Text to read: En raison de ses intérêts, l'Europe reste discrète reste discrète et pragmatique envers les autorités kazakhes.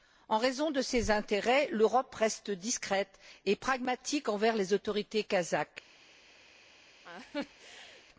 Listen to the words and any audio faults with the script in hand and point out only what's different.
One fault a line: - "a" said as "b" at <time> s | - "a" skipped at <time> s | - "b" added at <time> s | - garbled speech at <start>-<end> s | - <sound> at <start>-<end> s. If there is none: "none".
- "reste discrète" skipped at 3.2 s
- laugh at 7.0-8.1 s